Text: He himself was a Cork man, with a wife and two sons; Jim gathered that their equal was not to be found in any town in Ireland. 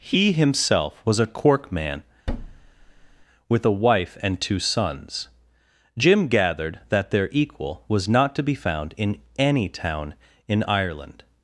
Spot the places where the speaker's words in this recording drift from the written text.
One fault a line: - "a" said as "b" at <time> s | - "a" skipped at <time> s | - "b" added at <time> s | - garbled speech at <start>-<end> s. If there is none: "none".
none